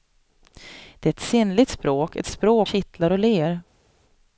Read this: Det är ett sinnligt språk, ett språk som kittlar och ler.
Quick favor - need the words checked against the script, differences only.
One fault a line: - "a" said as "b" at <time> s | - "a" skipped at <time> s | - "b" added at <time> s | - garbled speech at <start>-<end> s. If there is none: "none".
- "som" skipped at 2.7 s